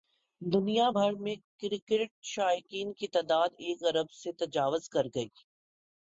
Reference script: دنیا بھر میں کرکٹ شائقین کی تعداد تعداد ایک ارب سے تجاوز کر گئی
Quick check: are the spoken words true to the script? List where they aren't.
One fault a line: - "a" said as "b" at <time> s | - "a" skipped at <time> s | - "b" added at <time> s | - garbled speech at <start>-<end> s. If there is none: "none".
- "تعداد" skipped at 3.5 s